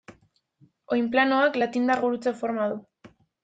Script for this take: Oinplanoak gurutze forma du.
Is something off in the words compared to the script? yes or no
yes